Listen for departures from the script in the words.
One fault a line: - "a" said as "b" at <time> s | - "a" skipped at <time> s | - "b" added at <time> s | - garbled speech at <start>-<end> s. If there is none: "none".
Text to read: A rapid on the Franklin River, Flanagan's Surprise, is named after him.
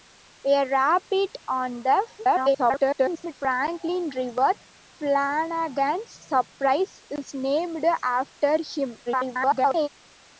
- garbled speech at 2.2-3.3 s
- garbled speech at 9.1-9.9 s